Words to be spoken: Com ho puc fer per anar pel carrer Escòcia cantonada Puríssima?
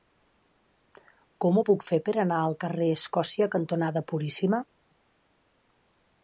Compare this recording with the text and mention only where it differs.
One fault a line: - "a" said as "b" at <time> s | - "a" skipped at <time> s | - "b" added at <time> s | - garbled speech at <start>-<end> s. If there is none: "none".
- "pel" said as "al" at 2.4 s